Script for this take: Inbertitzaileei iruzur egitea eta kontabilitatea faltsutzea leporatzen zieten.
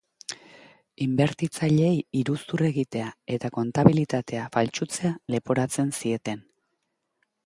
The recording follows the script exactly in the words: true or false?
true